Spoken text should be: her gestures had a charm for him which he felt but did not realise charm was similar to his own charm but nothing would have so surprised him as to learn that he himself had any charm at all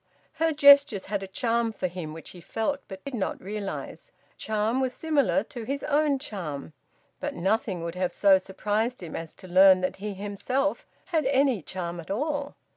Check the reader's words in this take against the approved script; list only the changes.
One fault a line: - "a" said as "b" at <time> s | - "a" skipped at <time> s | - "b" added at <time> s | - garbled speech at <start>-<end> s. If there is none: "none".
none